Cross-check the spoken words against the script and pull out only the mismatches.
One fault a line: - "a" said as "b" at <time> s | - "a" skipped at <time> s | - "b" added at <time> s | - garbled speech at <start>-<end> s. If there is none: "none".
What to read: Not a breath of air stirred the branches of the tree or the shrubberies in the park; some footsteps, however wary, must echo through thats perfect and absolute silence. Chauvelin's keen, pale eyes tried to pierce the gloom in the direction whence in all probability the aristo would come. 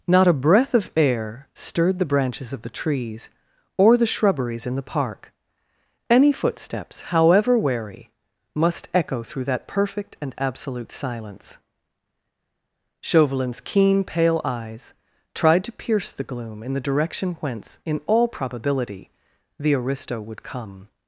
- "tree" said as "trees" at 2.7 s
- "some" said as "any" at 6.1 s
- "thats" said as "that" at 9.4 s